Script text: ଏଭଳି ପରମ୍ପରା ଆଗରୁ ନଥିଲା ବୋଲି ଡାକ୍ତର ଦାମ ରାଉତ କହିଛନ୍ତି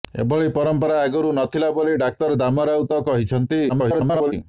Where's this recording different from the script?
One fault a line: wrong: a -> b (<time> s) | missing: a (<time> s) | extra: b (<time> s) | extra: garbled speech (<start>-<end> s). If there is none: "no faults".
extra: garbled speech (3.7-4.3 s)